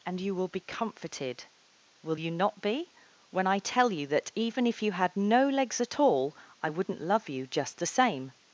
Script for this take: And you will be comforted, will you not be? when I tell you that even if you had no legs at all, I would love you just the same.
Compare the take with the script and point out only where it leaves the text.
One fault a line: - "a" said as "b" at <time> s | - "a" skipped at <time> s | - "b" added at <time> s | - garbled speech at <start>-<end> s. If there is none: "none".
- "would" said as "wouldn't" at 6.7 s